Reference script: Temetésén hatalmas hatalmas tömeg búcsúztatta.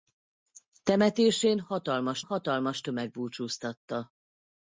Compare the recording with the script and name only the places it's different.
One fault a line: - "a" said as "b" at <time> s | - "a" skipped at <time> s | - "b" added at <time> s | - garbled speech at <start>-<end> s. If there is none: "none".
none